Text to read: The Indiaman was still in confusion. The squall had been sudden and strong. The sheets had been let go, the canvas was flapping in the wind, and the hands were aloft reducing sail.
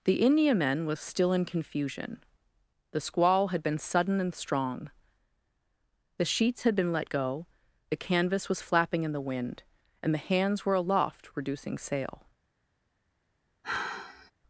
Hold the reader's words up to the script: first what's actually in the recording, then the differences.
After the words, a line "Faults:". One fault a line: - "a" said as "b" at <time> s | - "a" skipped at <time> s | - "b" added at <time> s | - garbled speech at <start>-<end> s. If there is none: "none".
The Indiaman was still in confusion. The squall had been sudden and strong. The sheets had been let go, the canvas was flapping in the wind, and the hands were aloft reducing sail.
Faults:
none